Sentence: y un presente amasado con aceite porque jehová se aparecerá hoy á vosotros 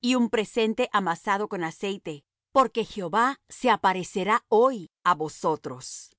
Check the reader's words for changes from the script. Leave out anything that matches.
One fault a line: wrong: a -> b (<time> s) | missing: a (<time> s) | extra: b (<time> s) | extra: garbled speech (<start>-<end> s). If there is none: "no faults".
no faults